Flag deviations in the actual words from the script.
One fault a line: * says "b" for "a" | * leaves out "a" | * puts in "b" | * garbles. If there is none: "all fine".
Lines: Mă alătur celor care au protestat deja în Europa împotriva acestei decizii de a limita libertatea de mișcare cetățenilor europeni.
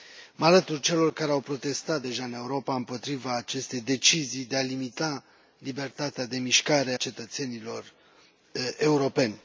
all fine